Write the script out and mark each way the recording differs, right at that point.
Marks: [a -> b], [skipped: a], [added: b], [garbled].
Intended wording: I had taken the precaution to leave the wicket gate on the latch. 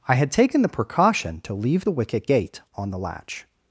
I had taken the precaution to leave the wicket gate on the latch.